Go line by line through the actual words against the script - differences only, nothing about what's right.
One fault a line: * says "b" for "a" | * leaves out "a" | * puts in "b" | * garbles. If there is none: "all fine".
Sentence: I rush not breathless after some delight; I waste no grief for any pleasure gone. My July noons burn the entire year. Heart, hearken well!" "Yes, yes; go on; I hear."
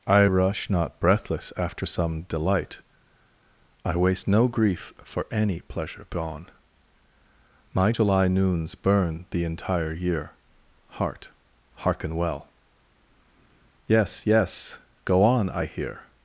all fine